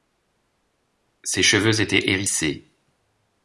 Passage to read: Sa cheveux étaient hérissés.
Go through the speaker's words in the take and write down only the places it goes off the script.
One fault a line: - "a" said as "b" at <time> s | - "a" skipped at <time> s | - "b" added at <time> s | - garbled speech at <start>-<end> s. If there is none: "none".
- "Sa" said as "Ses" at 1.2 s